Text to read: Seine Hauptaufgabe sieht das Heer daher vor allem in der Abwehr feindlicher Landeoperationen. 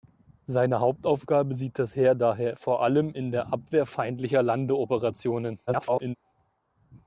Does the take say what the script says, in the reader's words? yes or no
no